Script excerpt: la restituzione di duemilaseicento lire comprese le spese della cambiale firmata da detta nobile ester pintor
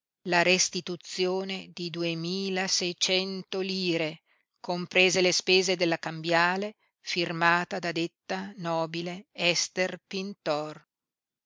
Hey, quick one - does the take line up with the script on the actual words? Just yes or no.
yes